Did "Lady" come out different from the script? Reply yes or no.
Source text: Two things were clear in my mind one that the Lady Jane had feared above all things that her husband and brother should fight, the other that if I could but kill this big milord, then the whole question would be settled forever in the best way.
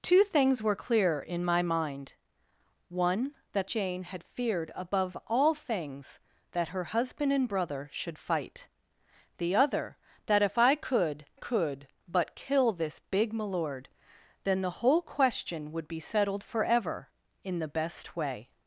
yes